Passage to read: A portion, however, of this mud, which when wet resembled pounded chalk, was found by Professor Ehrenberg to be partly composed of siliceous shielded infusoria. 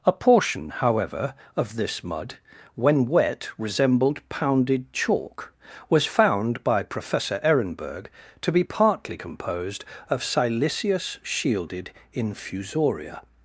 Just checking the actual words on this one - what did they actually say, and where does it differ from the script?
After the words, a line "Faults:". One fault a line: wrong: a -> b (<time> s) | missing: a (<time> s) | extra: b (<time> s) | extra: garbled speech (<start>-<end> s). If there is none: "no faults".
A portion, however, of this mud, when wet resembled pounded chalk, was found by Professor Ehrenberg to be partly composed of siliceous shielded infusoria.
Faults:
missing: which (2.4 s)